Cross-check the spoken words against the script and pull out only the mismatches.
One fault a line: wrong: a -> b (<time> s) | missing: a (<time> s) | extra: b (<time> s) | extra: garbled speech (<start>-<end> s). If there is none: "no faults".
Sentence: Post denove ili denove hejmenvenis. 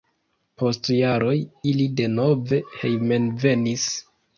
wrong: denove -> jaroj (1.0 s)